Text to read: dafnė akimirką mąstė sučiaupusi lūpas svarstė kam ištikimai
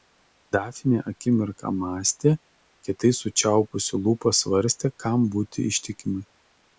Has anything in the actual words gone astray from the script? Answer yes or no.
yes